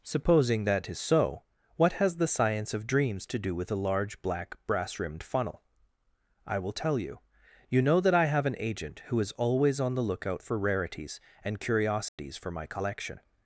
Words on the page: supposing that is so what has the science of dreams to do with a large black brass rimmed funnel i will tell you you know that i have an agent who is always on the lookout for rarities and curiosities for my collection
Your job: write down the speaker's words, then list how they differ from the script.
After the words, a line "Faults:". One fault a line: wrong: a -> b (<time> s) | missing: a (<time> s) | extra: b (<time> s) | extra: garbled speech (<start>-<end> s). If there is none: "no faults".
supposing that is so what has the science of dreams to do with a large black brass rimmed funnel i will tell you you know that i have an agent who is always on the lookout for rarities and curiosities for my collection
Faults:
no faults